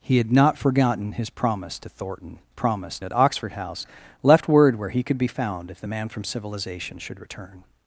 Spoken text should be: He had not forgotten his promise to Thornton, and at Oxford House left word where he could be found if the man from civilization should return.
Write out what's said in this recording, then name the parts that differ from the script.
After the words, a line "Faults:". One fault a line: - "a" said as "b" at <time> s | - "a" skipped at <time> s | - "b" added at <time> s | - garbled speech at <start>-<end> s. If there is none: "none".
He had not forgotten his promise to Thornton, promise at Oxford House left word where he could be found if the man from civilization should return.
Faults:
- "and" said as "promise" at 2.5 s